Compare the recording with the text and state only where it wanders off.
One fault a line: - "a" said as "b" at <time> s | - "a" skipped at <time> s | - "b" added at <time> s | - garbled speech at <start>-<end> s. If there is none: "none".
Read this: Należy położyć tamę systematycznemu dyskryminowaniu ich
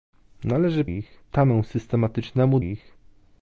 - "położyć" said as "ich" at 0.9 s
- "dyskryminowaniu" skipped at 2.6 s